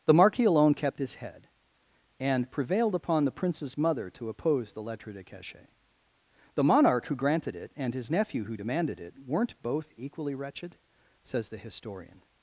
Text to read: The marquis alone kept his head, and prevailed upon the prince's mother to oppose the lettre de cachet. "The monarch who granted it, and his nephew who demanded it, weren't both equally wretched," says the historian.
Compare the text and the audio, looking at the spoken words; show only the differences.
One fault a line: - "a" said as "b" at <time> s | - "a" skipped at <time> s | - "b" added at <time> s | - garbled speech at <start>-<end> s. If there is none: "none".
none